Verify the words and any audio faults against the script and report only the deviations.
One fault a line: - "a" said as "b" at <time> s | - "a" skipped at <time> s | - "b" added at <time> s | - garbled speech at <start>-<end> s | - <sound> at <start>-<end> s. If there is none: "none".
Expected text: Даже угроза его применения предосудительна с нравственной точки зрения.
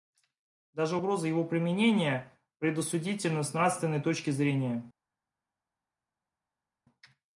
none